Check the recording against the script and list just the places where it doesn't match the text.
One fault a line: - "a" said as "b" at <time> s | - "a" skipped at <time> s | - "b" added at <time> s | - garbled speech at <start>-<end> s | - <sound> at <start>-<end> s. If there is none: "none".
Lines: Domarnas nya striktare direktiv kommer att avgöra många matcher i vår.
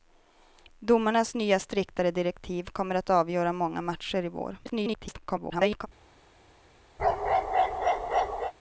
- garbled speech at 4.6-5.9 s
- bark at 7.0-8.5 s